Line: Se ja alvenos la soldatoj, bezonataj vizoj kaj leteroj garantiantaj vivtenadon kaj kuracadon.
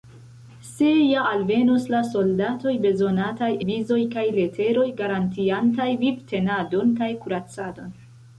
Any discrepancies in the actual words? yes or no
no